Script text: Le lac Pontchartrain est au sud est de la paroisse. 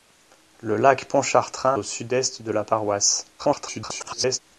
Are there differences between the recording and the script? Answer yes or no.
yes